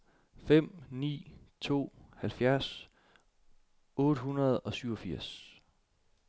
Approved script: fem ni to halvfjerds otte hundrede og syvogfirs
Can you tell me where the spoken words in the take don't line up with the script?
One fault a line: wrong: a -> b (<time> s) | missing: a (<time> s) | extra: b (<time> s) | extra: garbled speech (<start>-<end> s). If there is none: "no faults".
no faults